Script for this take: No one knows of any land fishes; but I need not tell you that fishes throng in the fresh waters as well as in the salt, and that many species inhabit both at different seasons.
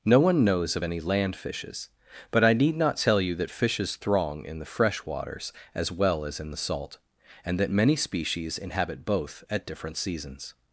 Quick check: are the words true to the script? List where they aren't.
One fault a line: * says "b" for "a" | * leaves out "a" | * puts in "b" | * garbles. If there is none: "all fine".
all fine